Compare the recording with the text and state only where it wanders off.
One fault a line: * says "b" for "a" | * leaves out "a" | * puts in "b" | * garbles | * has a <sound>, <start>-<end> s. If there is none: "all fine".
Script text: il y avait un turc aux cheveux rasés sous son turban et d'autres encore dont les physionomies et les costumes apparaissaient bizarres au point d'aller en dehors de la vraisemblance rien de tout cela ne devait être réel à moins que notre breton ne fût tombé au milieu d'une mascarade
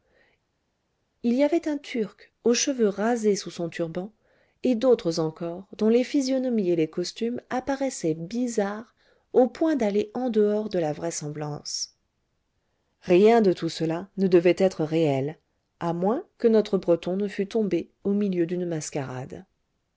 all fine